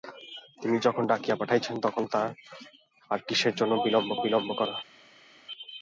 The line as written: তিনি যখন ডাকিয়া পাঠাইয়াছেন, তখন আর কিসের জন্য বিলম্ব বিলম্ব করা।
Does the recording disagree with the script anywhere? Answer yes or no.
no